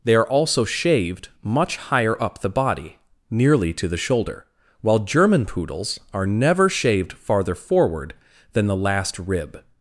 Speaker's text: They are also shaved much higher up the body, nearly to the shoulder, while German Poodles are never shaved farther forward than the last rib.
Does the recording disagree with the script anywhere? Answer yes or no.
no